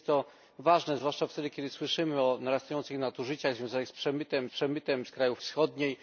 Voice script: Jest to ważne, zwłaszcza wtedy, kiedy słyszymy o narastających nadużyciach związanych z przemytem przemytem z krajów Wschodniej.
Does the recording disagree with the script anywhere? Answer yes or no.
no